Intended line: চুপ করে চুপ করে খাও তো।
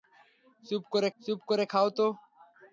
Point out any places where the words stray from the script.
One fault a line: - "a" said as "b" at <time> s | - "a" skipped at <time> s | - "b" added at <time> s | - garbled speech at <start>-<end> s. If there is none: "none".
none